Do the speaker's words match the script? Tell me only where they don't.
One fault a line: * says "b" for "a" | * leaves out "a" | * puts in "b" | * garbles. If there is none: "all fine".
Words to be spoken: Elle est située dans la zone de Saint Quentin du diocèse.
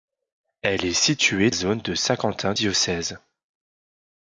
* leaves out "dans la"
* leaves out "du"